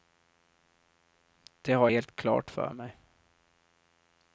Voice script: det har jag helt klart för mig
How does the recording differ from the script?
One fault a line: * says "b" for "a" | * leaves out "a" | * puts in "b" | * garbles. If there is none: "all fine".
* leaves out "jag"